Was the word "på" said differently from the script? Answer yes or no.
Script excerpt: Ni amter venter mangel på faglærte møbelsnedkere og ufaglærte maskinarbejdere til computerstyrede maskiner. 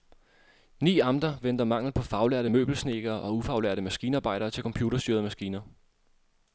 no